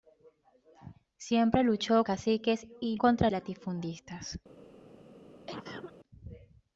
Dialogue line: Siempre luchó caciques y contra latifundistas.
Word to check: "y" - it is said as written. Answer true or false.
true